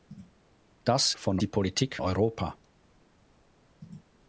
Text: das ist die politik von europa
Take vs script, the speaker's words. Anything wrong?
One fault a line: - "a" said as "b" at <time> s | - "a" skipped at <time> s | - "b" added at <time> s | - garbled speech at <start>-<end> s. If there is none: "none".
- "ist" said as "von" at 1.1 s
- "von" skipped at 2.0 s